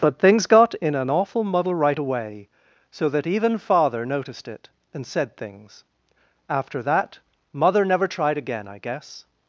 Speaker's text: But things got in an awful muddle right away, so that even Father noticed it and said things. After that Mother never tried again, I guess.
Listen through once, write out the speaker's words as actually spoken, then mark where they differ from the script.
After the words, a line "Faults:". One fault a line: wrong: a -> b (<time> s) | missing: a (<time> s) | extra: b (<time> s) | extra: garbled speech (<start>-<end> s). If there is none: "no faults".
But things got in an awful muddle right away, so that even Father noticed it and said things. After that Mother never tried again, I guess.
Faults:
no faults